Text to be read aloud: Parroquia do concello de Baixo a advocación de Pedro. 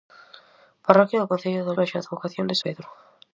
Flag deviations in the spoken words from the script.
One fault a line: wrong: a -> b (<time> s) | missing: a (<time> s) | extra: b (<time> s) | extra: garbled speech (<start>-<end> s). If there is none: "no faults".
no faults